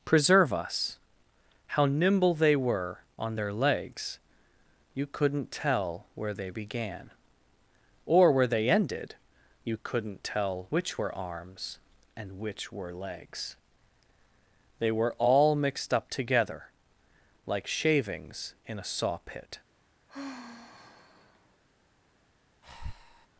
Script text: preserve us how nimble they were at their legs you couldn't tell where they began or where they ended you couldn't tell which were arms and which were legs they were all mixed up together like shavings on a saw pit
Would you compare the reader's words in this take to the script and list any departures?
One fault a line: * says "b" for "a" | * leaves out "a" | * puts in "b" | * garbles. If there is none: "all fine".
* says "on" for "at"
* says "in" for "on"